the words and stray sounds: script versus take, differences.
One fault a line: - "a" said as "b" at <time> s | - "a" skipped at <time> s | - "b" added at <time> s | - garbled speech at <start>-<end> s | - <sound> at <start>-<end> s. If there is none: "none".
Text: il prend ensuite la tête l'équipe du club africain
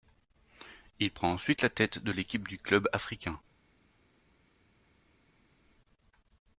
- "de" added at 2.0 s